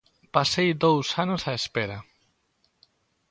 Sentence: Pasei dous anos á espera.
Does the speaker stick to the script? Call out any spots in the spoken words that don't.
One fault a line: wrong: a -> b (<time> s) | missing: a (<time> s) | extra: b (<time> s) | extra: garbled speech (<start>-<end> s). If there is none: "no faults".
no faults